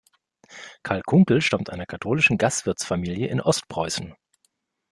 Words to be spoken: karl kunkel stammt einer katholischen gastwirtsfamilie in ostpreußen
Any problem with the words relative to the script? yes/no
no